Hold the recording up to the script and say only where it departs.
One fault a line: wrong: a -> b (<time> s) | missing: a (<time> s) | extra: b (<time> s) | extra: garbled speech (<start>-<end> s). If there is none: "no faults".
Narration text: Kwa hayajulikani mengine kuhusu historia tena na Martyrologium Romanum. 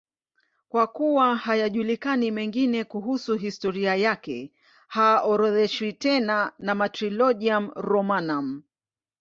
extra: kuwa (0.9 s)
extra: yake haorodheshwi (4.0 s)